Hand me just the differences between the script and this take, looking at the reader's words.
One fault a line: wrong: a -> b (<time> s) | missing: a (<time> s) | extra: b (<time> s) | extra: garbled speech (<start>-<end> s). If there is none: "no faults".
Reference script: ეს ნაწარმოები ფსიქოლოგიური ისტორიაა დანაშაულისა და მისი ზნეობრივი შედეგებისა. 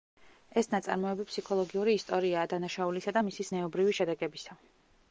no faults